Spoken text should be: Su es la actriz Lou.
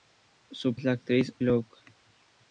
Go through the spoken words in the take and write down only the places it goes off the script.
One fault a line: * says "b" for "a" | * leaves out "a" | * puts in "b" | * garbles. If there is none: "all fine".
all fine